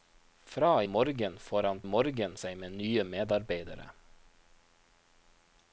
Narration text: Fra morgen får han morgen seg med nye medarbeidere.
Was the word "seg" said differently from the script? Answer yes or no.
no